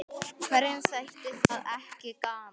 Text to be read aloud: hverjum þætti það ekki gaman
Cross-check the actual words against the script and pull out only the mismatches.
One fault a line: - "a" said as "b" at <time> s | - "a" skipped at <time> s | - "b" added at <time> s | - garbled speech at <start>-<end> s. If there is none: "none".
none